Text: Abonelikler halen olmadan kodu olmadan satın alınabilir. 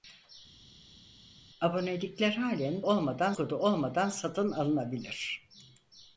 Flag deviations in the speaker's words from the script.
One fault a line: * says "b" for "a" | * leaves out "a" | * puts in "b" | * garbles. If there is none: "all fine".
all fine